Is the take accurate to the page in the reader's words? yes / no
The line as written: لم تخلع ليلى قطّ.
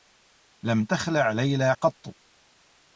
yes